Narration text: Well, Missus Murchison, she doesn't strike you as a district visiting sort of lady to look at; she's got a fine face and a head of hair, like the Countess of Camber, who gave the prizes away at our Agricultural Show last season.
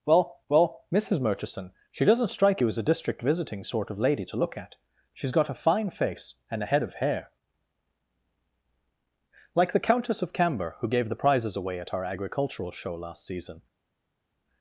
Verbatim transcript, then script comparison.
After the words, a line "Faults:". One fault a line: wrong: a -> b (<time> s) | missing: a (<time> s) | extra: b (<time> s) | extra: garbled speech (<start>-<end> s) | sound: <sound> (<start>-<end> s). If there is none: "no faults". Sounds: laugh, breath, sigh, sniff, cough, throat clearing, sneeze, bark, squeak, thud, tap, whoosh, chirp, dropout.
Well well, Missus Murchison, she doesn't strike you as a district visiting sort of lady to look at; she's got a fine face and a head of hair, like the Countess of Camber, who gave the prizes away at our Agricultural Show last season.
Faults:
extra: well (0.5 s)